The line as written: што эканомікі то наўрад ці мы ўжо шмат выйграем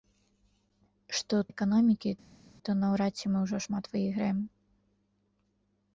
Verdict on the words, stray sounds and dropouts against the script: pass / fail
pass